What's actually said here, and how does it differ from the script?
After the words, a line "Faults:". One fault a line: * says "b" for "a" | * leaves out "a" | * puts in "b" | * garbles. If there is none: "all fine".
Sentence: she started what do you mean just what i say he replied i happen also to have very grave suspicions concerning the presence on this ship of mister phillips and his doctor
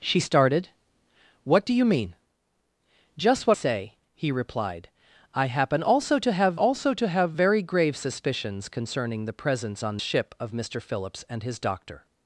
she started what do you mean just what say he replied i happen also to have also to have very grave suspicions concerning the presence on ship of mister phillips and his doctor
Faults:
* leaves out "i"
* puts in "also to have"
* leaves out "this"